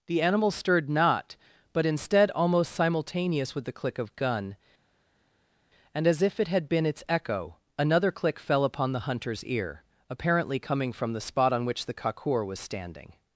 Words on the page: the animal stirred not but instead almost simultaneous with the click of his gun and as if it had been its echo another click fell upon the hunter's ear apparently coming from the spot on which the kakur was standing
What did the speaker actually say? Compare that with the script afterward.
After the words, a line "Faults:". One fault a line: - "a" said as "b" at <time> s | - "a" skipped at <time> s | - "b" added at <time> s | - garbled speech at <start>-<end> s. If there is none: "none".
the animal stirred not but instead almost simultaneous with the click of gun and as if it had been its echo another click fell upon the hunter's ear apparently coming from the spot on which the kakur was standing
Faults:
- "his" skipped at 4.2 s